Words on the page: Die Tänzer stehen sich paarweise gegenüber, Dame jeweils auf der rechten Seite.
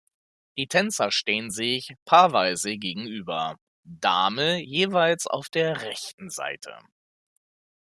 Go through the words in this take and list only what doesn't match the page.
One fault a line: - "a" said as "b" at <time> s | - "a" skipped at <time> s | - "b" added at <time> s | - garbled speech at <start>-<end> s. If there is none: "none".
none